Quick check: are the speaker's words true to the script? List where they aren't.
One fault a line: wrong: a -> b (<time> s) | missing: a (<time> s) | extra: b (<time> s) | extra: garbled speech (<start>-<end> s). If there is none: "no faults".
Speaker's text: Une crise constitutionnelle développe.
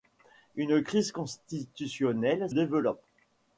no faults